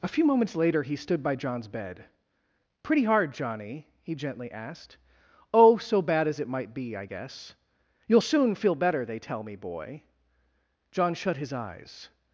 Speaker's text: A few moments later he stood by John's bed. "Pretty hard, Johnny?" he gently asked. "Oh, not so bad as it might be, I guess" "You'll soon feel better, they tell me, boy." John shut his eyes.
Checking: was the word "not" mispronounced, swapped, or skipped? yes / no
yes